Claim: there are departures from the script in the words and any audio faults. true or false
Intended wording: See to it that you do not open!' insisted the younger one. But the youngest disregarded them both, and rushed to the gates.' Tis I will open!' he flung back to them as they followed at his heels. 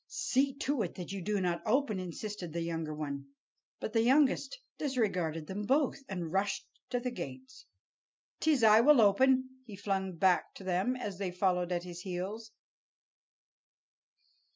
false